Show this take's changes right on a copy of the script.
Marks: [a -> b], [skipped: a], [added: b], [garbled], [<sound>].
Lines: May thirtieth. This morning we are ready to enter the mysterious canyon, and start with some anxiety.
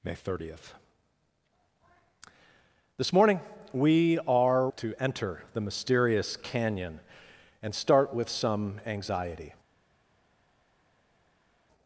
May thirtieth. This morning we are [skipped: ready] to enter the mysterious canyon, and start with some anxiety.